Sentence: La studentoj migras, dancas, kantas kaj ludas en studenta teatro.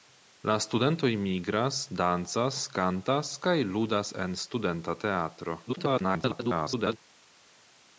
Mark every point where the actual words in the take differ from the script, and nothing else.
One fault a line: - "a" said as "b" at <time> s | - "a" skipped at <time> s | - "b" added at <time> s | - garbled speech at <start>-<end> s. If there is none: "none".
- garbled speech at 5.7-7.0 s